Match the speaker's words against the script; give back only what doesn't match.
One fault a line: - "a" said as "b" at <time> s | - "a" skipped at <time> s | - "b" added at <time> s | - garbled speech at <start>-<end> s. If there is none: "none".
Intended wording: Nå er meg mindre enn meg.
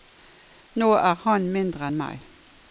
- "meg" said as "han" at 1.2 s